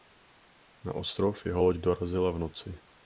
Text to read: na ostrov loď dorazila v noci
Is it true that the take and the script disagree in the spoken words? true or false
true